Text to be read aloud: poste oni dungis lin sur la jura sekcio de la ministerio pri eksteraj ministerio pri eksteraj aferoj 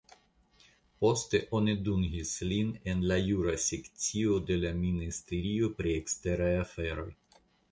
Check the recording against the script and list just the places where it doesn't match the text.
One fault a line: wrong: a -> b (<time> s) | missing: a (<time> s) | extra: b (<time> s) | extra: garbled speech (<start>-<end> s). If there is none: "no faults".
wrong: sur -> en (2.9 s)
missing: ministerio pri eksteraj (6.5 s)